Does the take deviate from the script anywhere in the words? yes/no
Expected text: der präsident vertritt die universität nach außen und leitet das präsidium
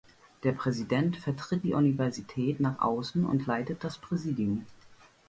no